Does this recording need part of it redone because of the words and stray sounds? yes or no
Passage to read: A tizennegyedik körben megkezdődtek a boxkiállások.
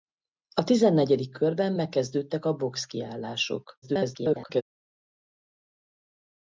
yes